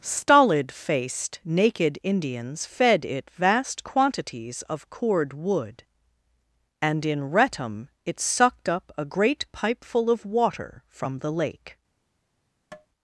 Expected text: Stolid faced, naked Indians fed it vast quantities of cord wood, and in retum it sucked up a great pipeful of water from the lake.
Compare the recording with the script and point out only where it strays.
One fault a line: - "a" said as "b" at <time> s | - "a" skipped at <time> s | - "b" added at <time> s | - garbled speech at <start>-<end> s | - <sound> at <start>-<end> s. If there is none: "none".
- tap at 12.7-12.9 s